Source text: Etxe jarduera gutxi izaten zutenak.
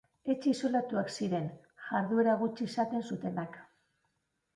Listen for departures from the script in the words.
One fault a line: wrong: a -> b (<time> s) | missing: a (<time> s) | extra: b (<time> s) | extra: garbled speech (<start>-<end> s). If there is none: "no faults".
extra: isolatuak ziren (0.5 s)